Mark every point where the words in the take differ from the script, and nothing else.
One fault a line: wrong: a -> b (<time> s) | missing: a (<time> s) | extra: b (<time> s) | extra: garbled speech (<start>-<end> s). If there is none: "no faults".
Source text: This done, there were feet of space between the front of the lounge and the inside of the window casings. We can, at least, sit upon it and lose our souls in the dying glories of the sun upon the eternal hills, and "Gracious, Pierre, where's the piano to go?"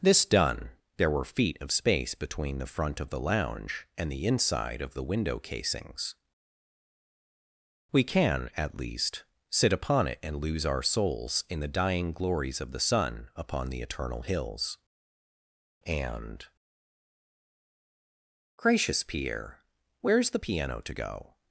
no faults